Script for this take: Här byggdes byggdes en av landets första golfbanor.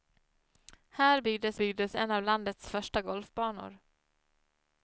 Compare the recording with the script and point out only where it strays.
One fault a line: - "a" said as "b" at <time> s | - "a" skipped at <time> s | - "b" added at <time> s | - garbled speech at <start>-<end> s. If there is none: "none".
none